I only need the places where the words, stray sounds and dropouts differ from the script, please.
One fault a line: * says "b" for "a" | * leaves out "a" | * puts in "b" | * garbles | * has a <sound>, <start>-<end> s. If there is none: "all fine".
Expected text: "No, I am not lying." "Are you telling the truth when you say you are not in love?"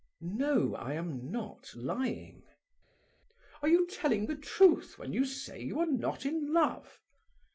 all fine